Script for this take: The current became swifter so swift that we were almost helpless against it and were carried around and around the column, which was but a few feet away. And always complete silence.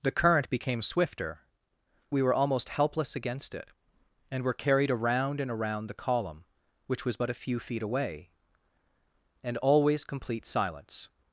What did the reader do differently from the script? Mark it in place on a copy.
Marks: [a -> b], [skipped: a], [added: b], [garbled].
The current became swifter [skipped: so swift that] we were almost helpless against it and were carried around and around the column, which was but a few feet away. And always complete silence.